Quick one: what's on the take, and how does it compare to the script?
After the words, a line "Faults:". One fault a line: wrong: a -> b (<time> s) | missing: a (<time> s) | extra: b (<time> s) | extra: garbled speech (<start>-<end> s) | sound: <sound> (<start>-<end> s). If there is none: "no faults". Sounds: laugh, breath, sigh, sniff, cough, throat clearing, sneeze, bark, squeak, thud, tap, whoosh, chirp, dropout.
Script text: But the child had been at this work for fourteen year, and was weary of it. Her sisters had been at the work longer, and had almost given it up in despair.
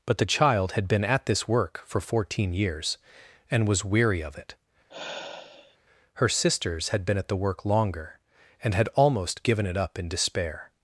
But the child had been at this work for fourteen years, and was weary of it. Her sisters had been at the work longer, and had almost given it up in despair.
Faults:
wrong: year -> years (2.5 s)
sound: sigh (4.9-5.8 s)